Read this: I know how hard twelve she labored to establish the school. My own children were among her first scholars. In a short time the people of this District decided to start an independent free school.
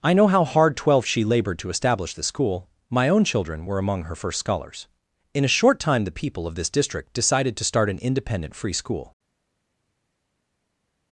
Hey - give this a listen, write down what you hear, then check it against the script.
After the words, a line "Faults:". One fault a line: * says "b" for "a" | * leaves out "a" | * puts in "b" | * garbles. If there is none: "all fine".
I know how hard twelve she labored to establish the school. My own children were among her first scholars. In a short time the people of this District decided to start an independent free school.
Faults:
all fine